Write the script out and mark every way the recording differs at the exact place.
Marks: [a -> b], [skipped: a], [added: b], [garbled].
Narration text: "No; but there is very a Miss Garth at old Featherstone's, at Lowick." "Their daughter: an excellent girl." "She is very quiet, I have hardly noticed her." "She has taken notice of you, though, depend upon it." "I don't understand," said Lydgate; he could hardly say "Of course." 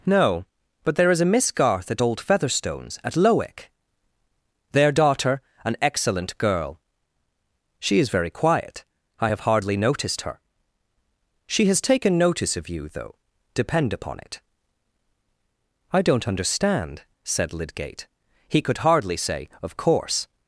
"No; but there is [skipped: very] a Miss Garth at old Featherstone's, at Lowick." "Their daughter: an excellent girl." "She is very quiet, I have hardly noticed her." "She has taken notice of you, though, depend upon it." "I don't understand," said Lydgate; he could hardly say "Of course."